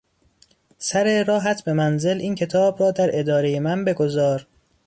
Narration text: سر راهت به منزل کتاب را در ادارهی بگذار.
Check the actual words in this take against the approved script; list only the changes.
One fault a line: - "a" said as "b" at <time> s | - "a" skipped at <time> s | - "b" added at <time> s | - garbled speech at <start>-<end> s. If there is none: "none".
- "این" added at 2.2 s
- "من" added at 3.6 s